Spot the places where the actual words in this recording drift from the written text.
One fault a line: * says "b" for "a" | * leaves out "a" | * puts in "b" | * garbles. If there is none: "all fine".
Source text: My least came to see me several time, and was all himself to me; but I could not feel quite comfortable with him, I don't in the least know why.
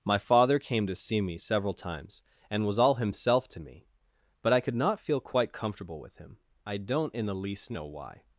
* says "father" for "least"
* says "times" for "time"